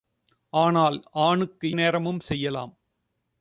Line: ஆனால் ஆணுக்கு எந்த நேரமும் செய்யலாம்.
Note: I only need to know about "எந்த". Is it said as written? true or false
false